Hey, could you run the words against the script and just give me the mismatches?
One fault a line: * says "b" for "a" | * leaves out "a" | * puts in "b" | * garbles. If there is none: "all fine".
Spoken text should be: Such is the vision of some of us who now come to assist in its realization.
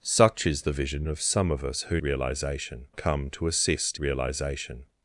* says "realization" for "now"
* leaves out "in its"